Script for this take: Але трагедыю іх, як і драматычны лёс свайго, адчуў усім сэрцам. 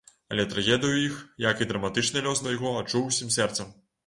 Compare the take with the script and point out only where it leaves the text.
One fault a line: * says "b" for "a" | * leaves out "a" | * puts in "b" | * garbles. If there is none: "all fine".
all fine